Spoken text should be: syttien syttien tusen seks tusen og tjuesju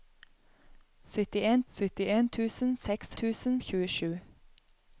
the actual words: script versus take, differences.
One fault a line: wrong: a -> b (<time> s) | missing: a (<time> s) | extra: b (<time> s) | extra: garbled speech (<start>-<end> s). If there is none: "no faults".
no faults